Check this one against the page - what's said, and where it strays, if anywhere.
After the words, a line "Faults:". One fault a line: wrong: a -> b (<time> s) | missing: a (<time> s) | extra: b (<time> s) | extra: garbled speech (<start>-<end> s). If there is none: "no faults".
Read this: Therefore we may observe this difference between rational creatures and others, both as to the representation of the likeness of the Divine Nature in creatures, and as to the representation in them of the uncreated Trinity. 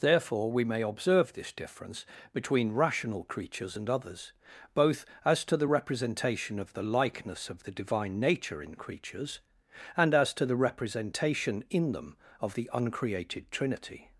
Therefore we may observe this difference between rational creatures and others, both as to the representation of the likeness of the Divine Nature in creatures, and as to the representation in them of the uncreated Trinity.
Faults:
no faults